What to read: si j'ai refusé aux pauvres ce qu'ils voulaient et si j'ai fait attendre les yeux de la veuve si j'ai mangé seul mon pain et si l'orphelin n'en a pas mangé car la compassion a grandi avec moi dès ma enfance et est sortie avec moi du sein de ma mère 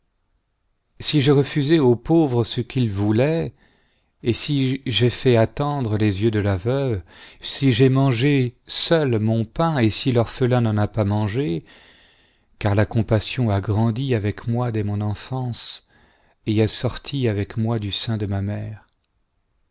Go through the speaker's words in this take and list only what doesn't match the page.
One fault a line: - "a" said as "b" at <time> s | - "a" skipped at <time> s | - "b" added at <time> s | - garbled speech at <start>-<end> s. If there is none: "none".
- "ma" said as "mon" at 14.8 s